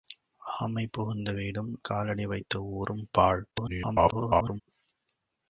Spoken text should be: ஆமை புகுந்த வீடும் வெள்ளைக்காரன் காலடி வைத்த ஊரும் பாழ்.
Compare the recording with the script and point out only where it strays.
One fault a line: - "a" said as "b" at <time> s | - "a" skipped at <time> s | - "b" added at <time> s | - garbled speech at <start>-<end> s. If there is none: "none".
- "வெள்ளைக்காரன்" skipped at 1.8 s
- garbled speech at 3.5-4.6 s